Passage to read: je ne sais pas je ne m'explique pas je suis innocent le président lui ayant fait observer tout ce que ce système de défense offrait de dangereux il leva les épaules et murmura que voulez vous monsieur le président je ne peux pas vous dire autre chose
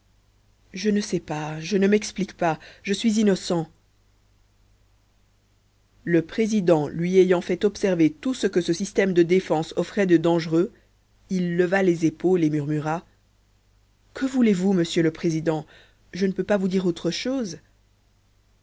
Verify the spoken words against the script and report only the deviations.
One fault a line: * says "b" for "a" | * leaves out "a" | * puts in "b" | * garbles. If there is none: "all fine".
all fine